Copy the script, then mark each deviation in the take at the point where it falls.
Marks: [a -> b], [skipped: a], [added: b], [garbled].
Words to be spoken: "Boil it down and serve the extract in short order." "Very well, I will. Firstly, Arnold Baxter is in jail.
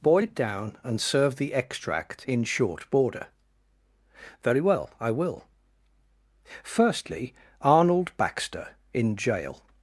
"Boil it down and serve the extract in short [order." -> border] "Very well, I will. Firstly, Arnold Baxter [skipped: is] in jail.